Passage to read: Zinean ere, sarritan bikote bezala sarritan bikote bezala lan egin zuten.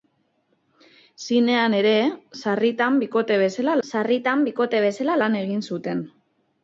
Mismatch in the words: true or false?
false